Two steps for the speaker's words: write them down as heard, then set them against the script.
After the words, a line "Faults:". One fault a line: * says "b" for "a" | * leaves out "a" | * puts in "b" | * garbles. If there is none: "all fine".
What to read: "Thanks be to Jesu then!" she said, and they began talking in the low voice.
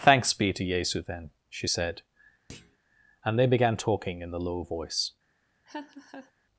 "Thanks be to Jesu then!" she said, and they began talking in the low voice.
Faults:
all fine